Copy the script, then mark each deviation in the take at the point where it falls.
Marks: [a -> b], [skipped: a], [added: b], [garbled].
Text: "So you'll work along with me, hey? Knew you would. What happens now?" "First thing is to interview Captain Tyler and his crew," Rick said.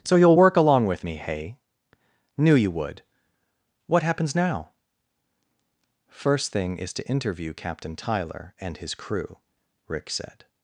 "So you'll work along with me, hey? Knew you would. What happens now?" "First thing is to interview Captain Tyler and his crew," Rick said.